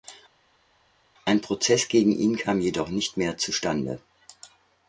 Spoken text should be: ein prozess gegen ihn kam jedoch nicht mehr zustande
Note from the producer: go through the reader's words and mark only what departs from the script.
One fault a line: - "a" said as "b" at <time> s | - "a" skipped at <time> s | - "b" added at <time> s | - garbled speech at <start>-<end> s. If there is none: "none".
none